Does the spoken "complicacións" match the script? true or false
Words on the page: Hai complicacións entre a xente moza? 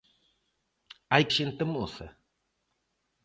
false